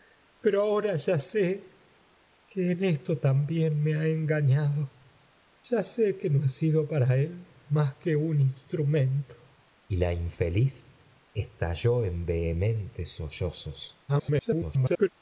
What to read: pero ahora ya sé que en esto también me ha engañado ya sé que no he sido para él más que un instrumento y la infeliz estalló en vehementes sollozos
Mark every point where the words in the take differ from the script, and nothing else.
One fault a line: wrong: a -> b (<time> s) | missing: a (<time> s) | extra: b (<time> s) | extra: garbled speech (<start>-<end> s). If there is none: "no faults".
extra: garbled speech (14.1-15.1 s)